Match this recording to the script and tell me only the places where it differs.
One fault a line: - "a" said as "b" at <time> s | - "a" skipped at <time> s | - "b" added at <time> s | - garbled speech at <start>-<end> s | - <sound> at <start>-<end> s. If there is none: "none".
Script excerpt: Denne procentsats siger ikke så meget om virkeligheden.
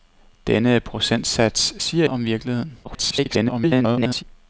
- "ikke så meget" skipped at 2.1 s
- garbled speech at 2.8-4.2 s